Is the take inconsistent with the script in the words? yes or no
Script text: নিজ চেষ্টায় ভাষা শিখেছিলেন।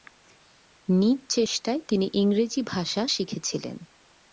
yes